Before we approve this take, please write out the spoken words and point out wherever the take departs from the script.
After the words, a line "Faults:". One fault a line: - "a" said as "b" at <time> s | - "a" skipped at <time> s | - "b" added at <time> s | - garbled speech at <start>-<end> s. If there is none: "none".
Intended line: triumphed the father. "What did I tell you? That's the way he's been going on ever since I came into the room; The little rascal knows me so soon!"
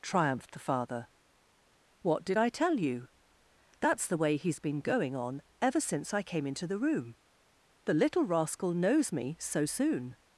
triumphed the father. "What did I tell you? That's the way he's been going on ever since I came into the room; The little rascal knows me so soon!"
Faults:
none